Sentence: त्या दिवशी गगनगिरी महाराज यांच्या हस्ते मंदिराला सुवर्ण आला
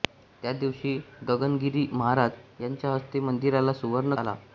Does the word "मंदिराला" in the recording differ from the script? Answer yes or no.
no